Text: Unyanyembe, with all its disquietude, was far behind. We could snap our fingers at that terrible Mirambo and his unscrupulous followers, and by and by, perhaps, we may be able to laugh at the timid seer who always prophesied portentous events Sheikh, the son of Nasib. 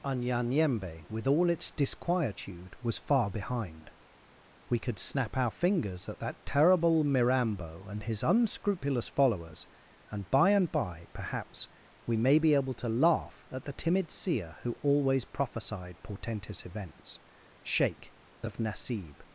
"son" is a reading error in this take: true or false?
true